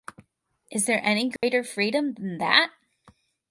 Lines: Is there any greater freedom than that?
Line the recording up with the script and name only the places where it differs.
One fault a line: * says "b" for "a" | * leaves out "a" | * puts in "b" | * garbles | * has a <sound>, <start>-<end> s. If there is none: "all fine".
* has a dropout, 1.4-1.4 s